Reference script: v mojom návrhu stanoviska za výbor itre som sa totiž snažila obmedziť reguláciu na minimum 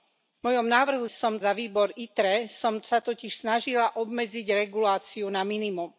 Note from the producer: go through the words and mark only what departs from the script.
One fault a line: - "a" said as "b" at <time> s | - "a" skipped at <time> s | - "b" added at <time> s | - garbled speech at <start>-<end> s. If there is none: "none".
- "stanoviska" said as "som" at 1.1 s